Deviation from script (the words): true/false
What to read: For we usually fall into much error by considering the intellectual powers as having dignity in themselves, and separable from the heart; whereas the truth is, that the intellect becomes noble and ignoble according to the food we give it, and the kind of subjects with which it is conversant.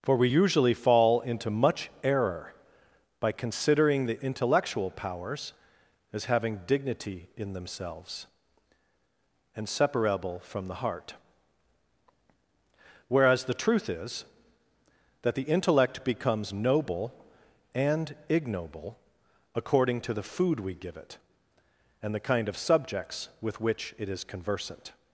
false